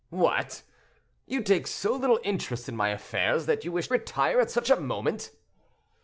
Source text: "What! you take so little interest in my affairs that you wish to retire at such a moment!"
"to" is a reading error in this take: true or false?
true